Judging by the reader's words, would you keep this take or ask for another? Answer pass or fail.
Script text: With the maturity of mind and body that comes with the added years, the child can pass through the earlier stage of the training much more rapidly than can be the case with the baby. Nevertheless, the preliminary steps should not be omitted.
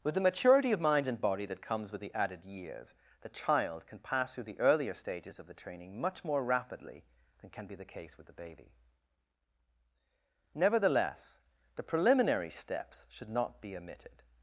fail